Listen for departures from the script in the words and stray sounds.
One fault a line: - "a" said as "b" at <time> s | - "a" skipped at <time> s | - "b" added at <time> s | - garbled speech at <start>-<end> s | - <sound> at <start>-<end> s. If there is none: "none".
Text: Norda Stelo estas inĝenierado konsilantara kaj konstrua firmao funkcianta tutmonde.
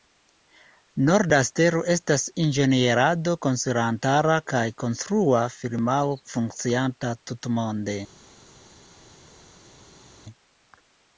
none